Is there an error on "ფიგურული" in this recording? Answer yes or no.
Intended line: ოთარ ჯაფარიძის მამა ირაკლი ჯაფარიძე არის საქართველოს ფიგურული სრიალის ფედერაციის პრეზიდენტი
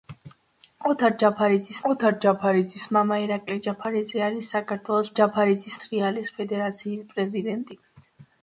yes